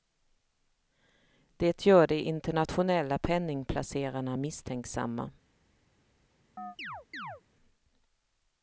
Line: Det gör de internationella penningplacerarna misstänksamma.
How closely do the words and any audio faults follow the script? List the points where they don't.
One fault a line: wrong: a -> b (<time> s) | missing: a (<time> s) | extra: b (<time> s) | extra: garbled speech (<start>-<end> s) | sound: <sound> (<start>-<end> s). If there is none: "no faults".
sound: chirp (6.6-7.4 s)